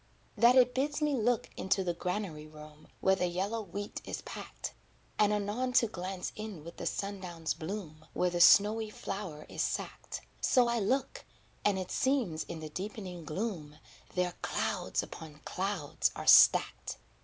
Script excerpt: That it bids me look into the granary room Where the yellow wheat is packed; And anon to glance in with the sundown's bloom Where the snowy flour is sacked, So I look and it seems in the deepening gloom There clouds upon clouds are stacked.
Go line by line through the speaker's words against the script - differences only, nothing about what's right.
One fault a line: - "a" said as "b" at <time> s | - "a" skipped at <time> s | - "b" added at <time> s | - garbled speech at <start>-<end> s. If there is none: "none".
none